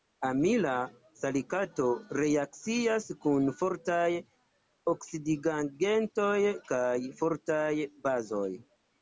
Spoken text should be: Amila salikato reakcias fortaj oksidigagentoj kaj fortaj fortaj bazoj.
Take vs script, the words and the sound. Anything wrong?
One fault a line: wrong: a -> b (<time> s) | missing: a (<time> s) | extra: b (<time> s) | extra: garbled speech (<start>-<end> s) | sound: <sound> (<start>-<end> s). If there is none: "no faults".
extra: kun (3.2 s)
missing: fortaj (7.7 s)